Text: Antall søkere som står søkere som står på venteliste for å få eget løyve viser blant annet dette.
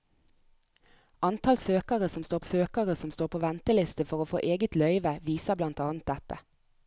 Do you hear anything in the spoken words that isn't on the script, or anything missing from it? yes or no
no